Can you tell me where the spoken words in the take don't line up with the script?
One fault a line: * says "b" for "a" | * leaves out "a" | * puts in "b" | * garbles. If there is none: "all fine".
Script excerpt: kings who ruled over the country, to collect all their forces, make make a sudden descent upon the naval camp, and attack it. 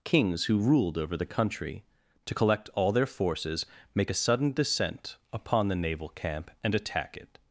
* leaves out "make"